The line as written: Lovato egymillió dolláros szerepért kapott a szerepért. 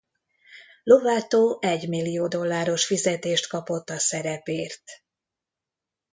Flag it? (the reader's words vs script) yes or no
yes